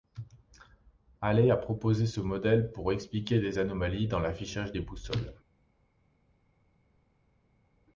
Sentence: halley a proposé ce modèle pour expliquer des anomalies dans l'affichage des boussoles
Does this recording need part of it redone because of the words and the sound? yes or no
no